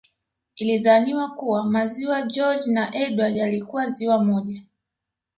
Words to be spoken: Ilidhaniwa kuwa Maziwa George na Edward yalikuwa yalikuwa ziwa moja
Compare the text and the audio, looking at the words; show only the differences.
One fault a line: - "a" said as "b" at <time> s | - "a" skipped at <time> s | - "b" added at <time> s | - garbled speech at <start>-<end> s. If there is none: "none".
- "yalikuwa" skipped at 3.9 s